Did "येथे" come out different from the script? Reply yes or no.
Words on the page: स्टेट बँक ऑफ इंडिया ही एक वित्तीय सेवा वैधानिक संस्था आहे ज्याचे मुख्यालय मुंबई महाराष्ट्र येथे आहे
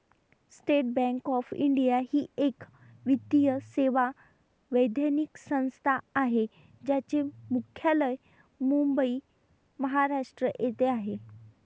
no